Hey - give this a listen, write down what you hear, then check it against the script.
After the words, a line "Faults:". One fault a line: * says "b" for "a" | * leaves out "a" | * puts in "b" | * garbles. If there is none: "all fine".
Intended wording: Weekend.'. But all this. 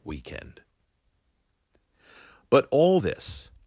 Weekend.'. But all this.
Faults:
all fine